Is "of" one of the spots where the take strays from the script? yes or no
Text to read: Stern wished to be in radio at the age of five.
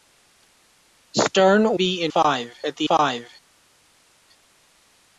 yes